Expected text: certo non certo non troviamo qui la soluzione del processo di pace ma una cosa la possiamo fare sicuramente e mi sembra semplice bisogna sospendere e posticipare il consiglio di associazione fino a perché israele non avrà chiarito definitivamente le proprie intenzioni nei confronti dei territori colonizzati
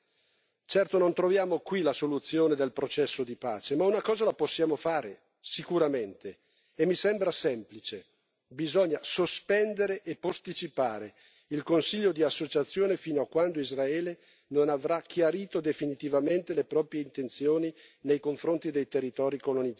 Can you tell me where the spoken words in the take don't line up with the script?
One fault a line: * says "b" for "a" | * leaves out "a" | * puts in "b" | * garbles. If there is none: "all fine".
* leaves out "certo non"
* says "quando" for "perché"